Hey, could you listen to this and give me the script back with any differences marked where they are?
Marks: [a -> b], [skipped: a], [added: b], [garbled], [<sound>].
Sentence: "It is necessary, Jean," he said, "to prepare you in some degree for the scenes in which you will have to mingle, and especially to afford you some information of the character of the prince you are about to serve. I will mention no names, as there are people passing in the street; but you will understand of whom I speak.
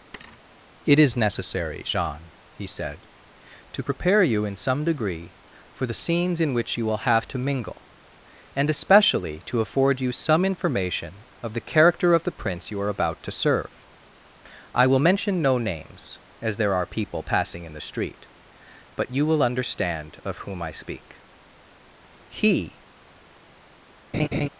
[thud] "It is necessary, Jean," he said, "to prepare you in some degree for the scenes in which you will have to mingle, and especially to afford you some information of the character of the prince you are about to serve. I will mention no names, as there are people passing in the street; but you will understand of whom I speak. [added: He] [laugh]